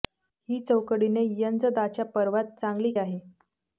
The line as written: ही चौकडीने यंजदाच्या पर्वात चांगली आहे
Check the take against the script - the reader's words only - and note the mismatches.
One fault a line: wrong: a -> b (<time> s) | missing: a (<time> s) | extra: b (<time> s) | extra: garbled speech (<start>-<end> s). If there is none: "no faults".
no faults